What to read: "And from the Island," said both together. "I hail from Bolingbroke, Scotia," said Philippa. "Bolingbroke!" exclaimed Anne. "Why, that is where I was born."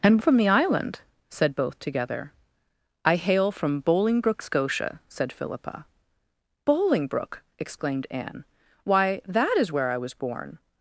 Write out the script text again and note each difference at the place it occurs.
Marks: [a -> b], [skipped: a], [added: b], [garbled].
"And from the Island," said both together. "I hail from Bolingbroke, Scotia," said Philippa. "Bolingbroke!" exclaimed Anne. "Why, that is where I was born."